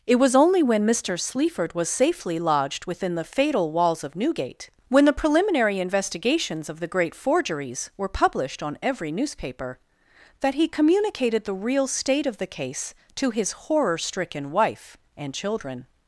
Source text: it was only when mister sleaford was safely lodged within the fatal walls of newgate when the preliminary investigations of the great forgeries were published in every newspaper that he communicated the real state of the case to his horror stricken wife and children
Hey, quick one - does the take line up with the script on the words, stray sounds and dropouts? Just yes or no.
no